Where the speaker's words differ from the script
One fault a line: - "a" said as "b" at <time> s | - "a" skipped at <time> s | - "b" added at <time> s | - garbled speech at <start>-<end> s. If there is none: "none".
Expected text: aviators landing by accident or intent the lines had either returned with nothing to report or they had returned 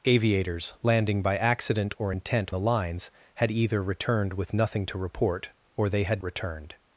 none